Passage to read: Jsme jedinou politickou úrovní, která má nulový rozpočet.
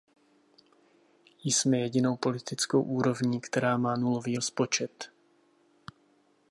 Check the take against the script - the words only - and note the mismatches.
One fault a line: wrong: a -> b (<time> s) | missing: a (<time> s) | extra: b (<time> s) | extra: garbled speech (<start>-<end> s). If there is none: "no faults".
no faults